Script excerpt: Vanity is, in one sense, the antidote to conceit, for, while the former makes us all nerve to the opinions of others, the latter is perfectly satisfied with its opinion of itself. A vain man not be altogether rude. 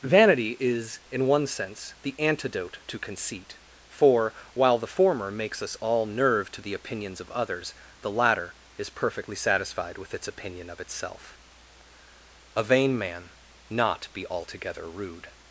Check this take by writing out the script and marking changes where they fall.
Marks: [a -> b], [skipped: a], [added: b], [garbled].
Vanity is, in one sense, the antidote to conceit, for, while the former makes us all nerve to the opinions of others, the latter is perfectly satisfied with its opinion of itself. A vain man not be altogether rude.